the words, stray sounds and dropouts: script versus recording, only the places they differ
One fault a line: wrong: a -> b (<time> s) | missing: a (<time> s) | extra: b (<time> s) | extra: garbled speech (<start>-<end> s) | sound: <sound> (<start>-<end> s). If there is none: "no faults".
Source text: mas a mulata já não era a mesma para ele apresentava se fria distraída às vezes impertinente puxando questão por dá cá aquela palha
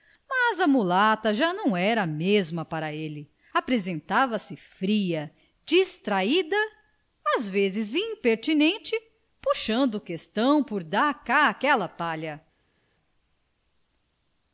no faults